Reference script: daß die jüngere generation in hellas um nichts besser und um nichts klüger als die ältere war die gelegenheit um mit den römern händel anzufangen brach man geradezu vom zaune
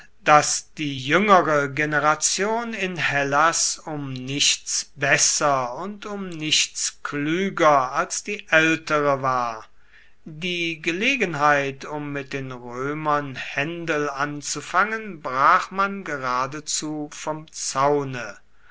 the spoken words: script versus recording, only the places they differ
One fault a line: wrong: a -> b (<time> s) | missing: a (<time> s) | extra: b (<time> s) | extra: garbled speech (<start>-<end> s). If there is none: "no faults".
no faults